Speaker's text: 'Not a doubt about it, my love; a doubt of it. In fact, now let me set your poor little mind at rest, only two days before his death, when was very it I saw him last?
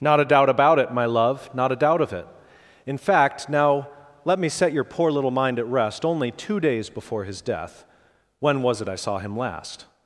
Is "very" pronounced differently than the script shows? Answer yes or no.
yes